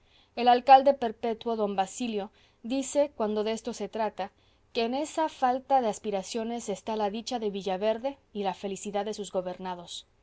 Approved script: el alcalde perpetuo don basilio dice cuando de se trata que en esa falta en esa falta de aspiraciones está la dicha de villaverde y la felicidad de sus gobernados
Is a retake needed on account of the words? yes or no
yes